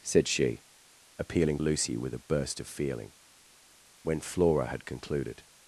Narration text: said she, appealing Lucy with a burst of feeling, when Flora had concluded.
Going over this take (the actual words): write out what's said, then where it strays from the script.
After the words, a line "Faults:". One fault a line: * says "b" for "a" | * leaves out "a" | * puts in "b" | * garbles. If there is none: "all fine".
said she, appealing Lucy with a burst of feeling, when Flora had concluded.
Faults:
all fine